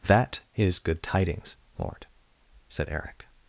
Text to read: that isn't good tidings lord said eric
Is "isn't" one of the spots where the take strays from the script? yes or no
yes